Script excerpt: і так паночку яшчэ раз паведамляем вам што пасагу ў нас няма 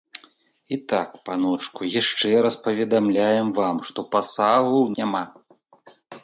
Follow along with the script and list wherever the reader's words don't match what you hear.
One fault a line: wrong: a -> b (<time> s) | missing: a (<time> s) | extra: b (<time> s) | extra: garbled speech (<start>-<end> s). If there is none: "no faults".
missing: нас (4.9 s)